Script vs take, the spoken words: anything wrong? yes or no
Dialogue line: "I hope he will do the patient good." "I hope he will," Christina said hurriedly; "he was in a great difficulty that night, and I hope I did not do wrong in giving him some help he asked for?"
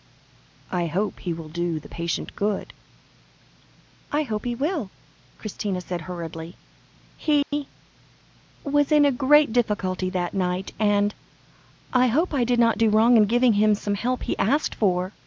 no